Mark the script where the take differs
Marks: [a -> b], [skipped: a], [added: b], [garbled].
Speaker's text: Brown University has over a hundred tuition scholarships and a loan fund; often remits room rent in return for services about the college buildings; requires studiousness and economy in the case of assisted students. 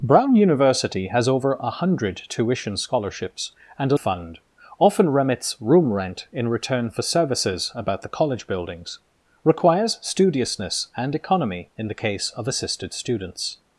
Brown University has over a hundred tuition scholarships and a [skipped: loan] fund; often remits room rent in return for services about the college buildings; requires studiousness and economy in the case of assisted students.